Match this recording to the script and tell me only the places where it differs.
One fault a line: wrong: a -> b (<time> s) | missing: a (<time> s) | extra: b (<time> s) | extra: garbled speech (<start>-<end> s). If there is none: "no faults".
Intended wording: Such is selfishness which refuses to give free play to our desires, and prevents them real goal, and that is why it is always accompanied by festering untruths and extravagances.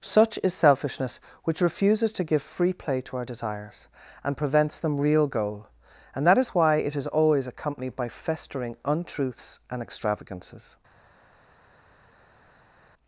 no faults